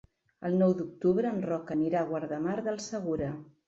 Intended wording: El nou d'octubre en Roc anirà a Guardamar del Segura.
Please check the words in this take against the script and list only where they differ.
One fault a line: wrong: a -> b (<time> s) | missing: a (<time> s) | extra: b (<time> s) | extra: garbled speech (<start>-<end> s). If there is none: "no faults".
no faults